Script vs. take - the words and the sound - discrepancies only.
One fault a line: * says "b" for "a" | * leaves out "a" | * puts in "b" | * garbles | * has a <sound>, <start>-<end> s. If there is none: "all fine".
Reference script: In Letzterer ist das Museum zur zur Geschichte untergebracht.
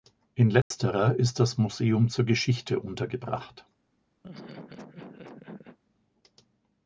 * has a dropout, 0.6-0.7 s
* leaves out "zur"
* has a laugh, 4.2-5.8 s